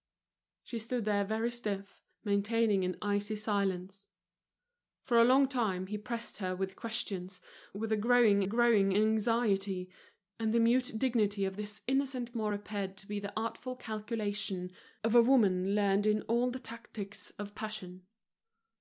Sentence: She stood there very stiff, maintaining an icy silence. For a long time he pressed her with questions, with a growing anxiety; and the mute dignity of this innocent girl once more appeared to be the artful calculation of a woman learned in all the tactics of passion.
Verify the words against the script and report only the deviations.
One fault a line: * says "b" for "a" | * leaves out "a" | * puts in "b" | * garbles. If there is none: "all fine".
* puts in "growing"
* leaves out "girl once"